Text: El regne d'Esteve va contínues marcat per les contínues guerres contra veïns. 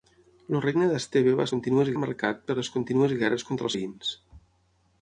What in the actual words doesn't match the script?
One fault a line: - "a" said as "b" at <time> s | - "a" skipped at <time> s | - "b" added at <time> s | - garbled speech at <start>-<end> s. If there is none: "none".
none